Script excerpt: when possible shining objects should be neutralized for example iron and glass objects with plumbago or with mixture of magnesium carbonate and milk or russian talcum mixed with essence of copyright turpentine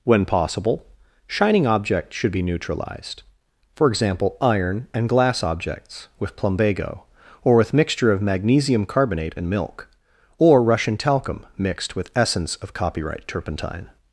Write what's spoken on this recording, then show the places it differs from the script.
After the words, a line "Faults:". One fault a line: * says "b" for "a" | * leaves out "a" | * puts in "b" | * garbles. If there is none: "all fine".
when possible shining objects should be neutralized for example iron and glass objects with plumbago or with mixture of magnesium carbonate and milk or russian talcum mixed with essence of copyright turpentine
Faults:
all fine